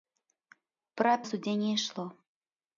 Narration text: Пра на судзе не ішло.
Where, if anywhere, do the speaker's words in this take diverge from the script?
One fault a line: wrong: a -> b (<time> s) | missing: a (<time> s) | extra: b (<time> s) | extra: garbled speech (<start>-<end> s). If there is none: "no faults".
no faults